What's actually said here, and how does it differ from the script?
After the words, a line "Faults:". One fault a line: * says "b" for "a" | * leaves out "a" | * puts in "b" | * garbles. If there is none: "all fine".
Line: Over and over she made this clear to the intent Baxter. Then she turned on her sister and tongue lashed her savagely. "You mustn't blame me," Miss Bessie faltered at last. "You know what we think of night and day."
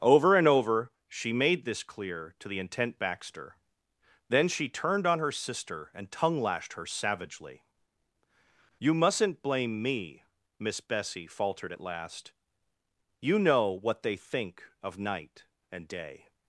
Over and over she made this clear to the intent Baxter. Then she turned on her sister and tongue lashed her savagely. "You mustn't blame me," Miss Bessie faltered at last. "You know what they think of night and day."
Faults:
* says "they" for "we"